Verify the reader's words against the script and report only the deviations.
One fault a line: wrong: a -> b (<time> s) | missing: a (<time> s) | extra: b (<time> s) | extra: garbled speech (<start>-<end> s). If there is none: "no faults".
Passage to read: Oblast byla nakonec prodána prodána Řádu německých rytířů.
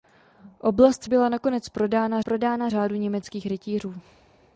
no faults